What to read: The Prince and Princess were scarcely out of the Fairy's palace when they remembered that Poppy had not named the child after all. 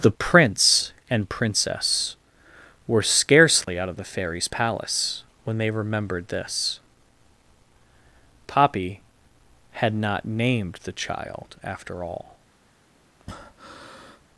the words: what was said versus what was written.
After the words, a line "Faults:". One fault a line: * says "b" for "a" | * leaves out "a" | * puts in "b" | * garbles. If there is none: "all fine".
The Prince and Princess were scarcely out of the Fairy's palace when they remembered this Poppy had not named the child after all.
Faults:
* says "this" for "that"